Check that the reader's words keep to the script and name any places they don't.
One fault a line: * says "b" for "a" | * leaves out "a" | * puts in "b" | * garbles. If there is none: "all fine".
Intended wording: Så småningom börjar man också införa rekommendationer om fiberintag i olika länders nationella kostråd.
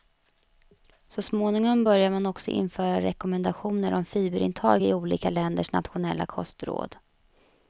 all fine